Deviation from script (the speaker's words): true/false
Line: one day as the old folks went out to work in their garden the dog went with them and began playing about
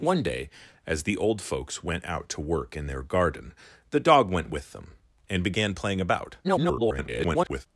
true